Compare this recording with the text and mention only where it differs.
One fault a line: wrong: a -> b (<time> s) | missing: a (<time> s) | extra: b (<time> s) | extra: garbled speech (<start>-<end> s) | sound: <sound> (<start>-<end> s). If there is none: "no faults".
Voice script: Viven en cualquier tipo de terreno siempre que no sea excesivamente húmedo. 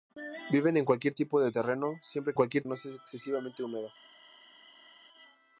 wrong: que -> cualquier (2.3 s)